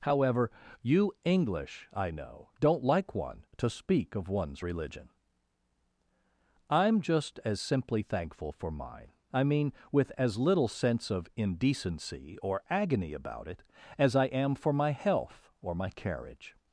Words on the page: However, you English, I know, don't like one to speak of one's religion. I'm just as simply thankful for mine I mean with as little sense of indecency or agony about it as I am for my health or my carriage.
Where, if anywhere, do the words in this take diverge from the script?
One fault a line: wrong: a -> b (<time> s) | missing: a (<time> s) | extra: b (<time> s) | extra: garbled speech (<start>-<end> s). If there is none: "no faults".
no faults